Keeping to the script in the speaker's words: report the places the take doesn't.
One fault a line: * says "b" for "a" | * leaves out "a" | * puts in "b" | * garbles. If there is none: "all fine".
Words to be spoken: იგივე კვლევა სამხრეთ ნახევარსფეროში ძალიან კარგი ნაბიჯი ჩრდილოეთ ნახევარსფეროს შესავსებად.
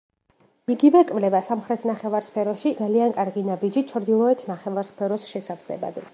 all fine